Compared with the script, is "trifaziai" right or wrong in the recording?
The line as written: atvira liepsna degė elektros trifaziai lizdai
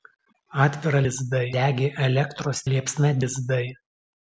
wrong